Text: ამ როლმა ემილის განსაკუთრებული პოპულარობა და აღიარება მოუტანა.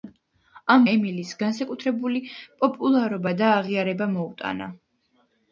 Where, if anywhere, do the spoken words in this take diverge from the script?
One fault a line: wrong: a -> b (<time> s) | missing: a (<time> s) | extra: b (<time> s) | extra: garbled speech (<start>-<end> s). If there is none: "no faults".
missing: როლმა (0.8 s)